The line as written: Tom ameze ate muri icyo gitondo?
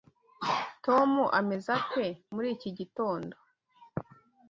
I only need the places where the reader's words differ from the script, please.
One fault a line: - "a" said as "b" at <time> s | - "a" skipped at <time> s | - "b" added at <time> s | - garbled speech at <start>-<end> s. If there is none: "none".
- "icyo" said as "iki" at 2.5 s